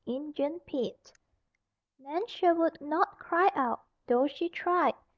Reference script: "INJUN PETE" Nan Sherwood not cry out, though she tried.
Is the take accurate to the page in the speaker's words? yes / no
yes